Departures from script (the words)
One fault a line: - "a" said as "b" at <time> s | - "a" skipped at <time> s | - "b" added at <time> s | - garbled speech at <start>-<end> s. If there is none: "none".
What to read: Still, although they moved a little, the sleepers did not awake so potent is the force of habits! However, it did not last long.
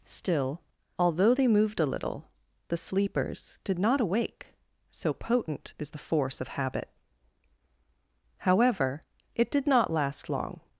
- "habits" said as "habit" at 6.5 s